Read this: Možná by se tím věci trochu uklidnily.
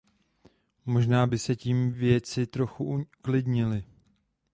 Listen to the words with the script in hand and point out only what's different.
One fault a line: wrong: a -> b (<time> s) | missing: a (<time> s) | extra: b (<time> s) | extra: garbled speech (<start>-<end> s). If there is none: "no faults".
no faults